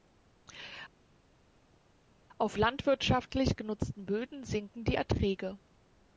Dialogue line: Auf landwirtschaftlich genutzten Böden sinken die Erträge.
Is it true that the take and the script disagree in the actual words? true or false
false